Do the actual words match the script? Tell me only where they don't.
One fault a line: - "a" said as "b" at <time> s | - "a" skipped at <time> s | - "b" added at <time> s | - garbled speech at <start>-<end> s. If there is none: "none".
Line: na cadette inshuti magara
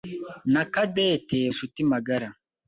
none